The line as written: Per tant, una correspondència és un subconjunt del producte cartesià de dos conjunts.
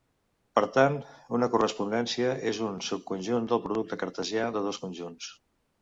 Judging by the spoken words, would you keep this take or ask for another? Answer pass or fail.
pass